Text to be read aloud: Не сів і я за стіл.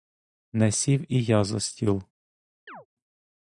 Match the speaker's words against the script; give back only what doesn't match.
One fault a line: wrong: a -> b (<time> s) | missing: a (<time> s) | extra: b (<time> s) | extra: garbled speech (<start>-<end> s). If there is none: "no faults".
no faults